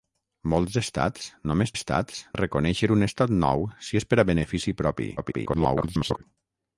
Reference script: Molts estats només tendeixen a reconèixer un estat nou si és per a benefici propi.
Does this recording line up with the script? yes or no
no